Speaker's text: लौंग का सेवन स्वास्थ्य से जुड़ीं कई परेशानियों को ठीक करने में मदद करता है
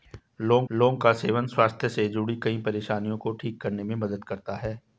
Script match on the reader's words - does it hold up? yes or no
no